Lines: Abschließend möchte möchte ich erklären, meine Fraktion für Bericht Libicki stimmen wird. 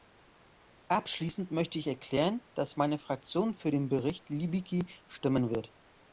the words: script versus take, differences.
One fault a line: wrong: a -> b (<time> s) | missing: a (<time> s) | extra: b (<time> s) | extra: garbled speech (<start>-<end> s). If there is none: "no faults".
missing: möchte (1.8 s)
extra: dass (2.5 s)
extra: den (3.7 s)